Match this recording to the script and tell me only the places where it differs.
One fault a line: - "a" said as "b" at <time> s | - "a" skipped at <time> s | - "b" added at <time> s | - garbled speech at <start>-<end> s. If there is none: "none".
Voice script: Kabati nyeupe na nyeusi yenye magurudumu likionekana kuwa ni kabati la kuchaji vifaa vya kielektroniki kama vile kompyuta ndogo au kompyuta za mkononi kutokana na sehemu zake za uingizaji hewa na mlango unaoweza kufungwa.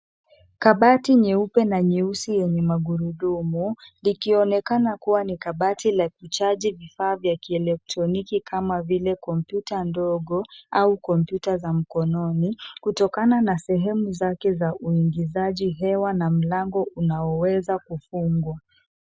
none